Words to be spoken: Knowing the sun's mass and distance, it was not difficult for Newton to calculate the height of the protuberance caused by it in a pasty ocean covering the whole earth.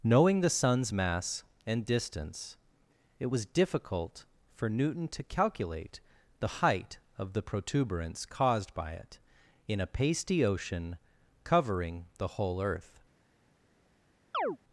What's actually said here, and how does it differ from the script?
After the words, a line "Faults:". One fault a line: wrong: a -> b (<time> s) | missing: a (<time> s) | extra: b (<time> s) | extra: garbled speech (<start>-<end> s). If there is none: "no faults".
Knowing the sun's mass and distance, it was difficult for Newton to calculate the height of the protuberance caused by it in a pasty ocean covering the whole earth.
Faults:
missing: not (3.5 s)